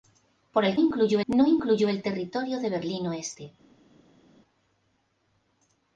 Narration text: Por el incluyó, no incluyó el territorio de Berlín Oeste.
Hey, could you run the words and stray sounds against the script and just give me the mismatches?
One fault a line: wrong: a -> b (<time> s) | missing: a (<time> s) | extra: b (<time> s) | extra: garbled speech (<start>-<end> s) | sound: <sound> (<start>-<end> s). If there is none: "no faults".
no faults